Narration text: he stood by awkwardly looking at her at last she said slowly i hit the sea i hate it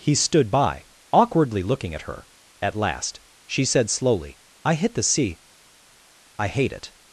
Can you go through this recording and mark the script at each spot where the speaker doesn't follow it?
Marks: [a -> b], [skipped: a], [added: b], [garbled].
he stood by awkwardly looking at her at last she said slowly i hit the sea i hate it